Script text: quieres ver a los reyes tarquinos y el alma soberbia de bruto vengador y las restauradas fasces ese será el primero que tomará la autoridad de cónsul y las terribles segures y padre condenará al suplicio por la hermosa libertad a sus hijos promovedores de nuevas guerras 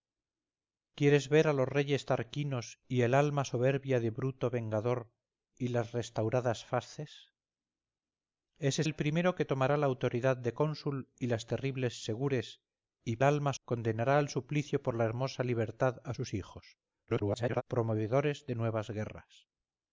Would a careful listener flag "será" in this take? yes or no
yes